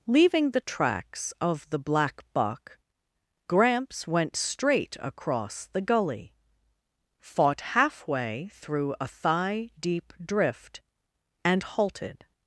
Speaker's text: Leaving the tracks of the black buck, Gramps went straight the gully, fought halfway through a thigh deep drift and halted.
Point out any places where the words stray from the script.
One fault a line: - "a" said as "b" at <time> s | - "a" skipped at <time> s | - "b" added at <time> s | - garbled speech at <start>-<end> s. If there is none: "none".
- "across" added at 5.0 s